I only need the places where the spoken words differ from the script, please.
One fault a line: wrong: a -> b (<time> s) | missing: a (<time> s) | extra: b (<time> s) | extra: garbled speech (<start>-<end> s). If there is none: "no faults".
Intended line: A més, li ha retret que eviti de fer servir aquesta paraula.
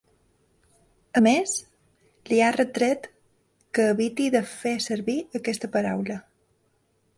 no faults